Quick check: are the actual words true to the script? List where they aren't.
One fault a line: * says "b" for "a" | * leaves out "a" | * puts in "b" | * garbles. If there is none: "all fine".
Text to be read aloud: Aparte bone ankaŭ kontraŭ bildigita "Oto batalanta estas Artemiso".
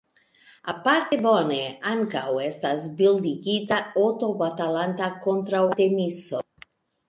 * says "estas" for "kontraŭ"
* says "kontraŭ" for "estas"